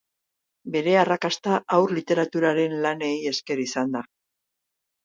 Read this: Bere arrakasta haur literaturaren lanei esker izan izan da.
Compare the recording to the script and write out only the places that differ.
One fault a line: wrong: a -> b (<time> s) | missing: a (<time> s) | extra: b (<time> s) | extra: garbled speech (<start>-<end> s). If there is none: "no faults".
missing: izan (4.0 s)